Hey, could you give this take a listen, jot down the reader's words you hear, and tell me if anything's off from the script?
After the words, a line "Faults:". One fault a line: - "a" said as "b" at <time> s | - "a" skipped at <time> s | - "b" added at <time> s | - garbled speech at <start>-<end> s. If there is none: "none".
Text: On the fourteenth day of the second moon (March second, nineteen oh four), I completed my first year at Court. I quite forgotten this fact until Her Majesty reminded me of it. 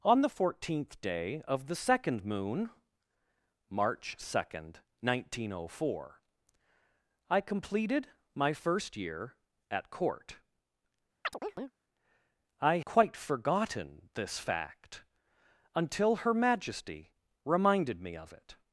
On the fourteenth day of the second moon (March second, nineteen oh four), I completed my first year at Court. I quite forgotten this fact until Her Majesty reminded me of it.
Faults:
none